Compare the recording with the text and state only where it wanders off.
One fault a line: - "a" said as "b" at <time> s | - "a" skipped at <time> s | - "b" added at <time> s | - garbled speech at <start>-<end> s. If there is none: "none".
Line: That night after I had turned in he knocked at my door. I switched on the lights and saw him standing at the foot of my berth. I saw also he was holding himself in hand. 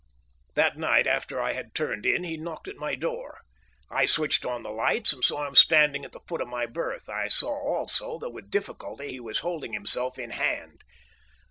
- "that with difficulty" added at 8.2 s